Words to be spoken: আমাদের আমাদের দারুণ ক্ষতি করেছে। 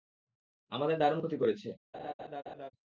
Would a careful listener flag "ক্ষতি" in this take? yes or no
no